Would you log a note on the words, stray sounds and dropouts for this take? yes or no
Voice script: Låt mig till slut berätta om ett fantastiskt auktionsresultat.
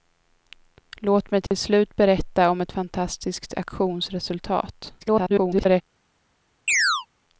yes